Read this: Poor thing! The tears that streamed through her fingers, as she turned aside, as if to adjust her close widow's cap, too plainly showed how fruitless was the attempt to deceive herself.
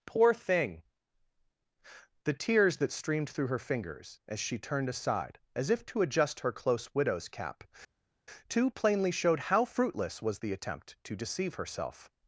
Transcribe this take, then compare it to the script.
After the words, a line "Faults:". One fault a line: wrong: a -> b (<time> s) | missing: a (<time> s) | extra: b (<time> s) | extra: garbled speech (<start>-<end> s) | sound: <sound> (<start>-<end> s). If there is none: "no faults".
Poor thing! The tears that streamed through her fingers, as she turned aside, as if to adjust her close widow's cap, too plainly showed how fruitless was the attempt to deceive herself.
Faults:
no faults